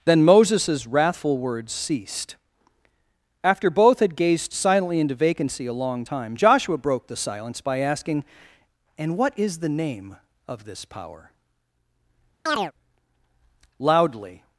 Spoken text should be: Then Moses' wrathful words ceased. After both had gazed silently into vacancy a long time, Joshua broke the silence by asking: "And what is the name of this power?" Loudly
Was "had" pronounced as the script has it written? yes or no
yes